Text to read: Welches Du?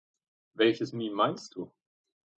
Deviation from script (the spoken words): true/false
true